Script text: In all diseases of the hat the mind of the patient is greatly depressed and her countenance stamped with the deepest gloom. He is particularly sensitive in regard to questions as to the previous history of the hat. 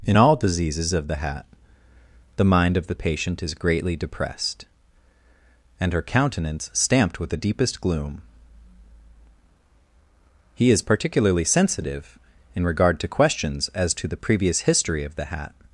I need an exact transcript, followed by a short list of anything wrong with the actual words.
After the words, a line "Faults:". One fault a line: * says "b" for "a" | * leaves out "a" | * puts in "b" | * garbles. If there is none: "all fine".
In all diseases of the hat the mind of the patient is greatly depressed and her countenance stamped with the deepest gloom. He is particularly sensitive in regard to questions as to the previous history of the hat.
Faults:
all fine